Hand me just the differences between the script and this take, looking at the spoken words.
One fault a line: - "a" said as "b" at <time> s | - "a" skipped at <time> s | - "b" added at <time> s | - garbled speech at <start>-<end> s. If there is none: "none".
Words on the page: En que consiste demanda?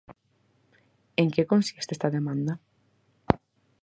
- "esta" added at 1.9 s